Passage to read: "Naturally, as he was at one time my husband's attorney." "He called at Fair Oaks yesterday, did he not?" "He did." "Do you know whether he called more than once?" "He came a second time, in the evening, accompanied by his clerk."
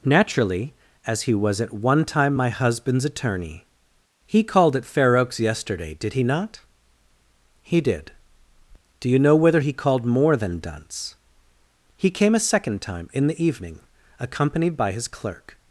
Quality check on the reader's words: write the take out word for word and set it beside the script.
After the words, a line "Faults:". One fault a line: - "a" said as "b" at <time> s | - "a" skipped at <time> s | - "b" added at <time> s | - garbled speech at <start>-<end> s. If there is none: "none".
"Naturally, as he was at one time my husband's attorney." "He called at Fair Oaks yesterday, did he not?" "He did." "Do you know whether he called more than dunce?" "He came a second time, in the evening, accompanied by his clerk."
Faults:
- "once" said as "dunce" at 10.6 s